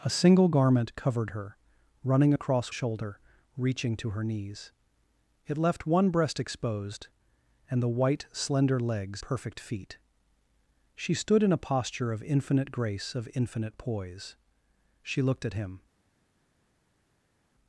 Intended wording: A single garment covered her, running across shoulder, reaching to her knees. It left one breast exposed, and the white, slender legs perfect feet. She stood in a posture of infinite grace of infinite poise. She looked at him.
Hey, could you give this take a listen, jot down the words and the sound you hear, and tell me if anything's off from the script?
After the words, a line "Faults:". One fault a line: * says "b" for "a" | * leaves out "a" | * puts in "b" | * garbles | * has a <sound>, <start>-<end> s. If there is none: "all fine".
A single garment covered her, running across shoulder, reaching to her knees. It left one breast exposed, and the white, slender legs perfect feet. She stood in a posture of infinite grace of infinite poise. She looked at him.
Faults:
all fine